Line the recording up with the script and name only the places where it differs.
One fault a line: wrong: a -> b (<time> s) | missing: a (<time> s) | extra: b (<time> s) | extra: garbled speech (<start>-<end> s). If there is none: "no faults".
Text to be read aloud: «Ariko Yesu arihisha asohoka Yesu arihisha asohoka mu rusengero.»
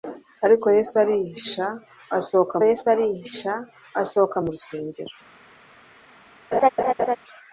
no faults